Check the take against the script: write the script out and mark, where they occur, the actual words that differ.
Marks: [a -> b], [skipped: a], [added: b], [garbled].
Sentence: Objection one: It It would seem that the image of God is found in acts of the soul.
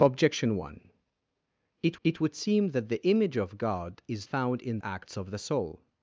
Objection one: It It would seem that the image of God is found in acts of the soul.